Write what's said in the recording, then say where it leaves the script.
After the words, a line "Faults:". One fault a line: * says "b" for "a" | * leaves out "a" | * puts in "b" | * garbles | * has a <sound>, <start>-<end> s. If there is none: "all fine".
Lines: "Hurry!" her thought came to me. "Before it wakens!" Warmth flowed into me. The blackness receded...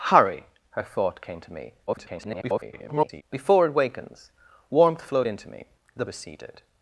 "Hurry!" her thought came to me. [garbled] "Before it wakens!" Warmth flowed into me. The receded...
Faults:
* garbles
* leaves out "blackness"